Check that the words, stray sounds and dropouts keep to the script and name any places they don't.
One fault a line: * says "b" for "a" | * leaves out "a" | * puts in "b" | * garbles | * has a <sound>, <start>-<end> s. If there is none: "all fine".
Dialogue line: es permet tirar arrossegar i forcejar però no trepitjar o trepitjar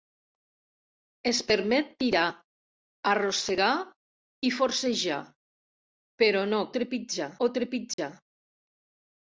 * has a dropout, 7.9-8.0 s